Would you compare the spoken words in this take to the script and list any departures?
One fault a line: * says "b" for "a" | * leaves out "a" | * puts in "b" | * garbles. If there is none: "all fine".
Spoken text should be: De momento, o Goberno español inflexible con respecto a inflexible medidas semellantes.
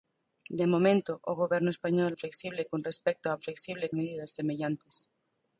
all fine